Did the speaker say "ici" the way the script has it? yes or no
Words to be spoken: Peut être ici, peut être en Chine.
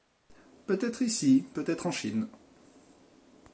yes